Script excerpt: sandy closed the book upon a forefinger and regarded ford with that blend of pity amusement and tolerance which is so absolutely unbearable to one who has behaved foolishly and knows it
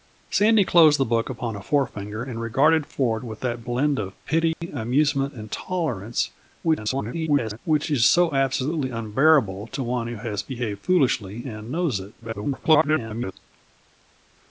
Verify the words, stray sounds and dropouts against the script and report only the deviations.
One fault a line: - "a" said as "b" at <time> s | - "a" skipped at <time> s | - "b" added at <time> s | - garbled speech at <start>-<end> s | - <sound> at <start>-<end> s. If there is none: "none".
- dropout at 4.5-4.6 s
- garbled speech at 6.6-7.6 s
- garbled speech at 12.2-13.3 s